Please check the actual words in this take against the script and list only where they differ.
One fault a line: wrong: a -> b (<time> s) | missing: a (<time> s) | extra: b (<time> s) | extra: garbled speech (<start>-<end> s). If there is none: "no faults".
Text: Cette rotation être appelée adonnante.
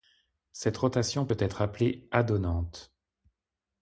extra: peut (1.2 s)